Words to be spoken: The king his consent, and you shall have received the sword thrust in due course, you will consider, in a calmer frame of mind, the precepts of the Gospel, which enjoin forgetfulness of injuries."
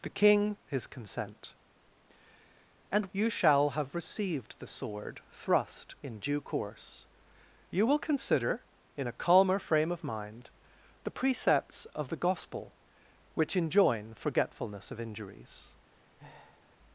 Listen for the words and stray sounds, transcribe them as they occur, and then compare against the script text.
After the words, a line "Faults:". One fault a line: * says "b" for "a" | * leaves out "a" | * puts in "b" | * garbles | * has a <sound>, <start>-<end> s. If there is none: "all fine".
The king his consent, and you shall have received the sword thrust in due course, you will consider, in a calmer frame of mind, the precepts of the Gospel, which enjoin forgetfulness of injuries."
Faults:
* has a breath, 15.9-16.8 s